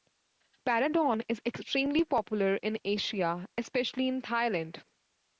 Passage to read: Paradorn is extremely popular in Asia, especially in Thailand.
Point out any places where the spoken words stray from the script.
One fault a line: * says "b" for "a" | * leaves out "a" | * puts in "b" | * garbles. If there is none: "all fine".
all fine